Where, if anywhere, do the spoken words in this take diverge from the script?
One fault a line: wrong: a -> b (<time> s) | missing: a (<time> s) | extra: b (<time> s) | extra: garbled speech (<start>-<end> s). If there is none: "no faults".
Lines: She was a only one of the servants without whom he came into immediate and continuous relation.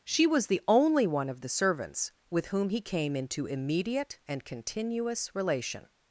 wrong: a -> the (0.5 s)
wrong: without -> with (2.3 s)